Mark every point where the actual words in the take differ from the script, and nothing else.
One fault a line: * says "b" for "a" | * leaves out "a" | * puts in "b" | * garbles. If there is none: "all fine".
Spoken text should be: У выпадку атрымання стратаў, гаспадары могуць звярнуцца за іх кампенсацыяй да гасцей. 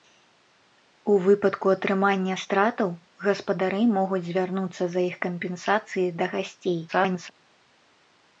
* garbles